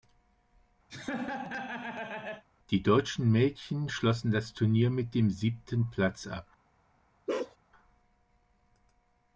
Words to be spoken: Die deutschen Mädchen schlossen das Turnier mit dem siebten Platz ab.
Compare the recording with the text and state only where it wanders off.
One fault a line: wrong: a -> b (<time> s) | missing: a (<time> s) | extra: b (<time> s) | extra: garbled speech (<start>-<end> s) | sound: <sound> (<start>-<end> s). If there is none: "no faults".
sound: laugh (0.9-2.4 s)
sound: bark (7.3-7.6 s)